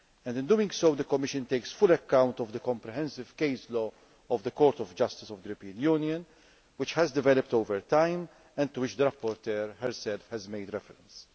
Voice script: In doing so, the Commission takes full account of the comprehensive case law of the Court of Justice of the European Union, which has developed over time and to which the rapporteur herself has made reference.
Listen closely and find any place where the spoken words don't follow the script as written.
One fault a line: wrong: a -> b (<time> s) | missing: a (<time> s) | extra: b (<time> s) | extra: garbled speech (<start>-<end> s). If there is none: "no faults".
no faults